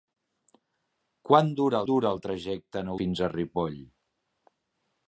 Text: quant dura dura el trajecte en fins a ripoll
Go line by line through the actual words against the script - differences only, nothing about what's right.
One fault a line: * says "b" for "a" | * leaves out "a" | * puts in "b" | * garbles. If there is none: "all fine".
all fine